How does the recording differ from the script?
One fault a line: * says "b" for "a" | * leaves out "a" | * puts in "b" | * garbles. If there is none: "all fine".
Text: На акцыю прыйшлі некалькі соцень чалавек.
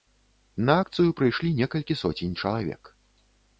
all fine